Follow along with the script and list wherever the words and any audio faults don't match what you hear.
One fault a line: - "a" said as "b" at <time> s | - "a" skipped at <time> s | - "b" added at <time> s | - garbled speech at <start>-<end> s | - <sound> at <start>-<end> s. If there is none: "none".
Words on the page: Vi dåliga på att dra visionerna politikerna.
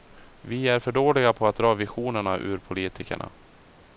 - "är för" added at 0.7 s
- "ur" added at 2.4 s